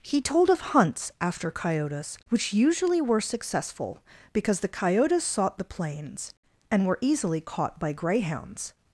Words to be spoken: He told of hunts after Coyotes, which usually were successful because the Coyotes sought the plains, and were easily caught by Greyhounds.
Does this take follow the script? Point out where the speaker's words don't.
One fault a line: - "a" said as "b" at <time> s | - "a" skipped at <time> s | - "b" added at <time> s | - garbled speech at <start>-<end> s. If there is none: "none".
none